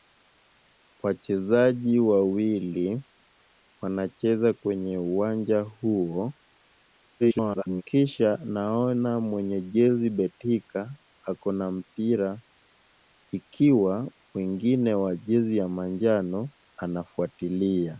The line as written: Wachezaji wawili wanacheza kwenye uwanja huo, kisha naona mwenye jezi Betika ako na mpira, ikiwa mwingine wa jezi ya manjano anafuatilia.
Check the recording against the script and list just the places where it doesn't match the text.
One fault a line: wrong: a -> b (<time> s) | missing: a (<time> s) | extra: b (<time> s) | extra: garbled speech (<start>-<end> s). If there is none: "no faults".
extra: garbled speech (7.2-7.8 s)